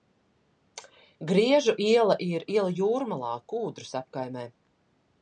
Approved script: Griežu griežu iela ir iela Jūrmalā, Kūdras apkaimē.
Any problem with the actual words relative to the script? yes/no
yes